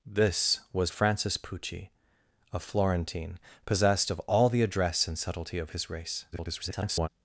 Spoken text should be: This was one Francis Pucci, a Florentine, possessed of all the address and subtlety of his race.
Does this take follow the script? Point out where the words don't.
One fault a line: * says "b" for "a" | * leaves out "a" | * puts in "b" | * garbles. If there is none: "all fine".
* leaves out "one"
* garbles